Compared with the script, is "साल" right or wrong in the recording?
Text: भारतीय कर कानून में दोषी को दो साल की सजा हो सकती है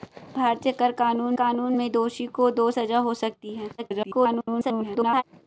wrong